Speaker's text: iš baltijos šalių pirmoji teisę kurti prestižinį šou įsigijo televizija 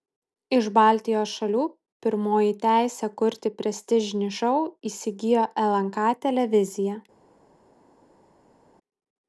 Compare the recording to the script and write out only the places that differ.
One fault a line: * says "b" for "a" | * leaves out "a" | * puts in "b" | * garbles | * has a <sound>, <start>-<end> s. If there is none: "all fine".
* puts in "lnk"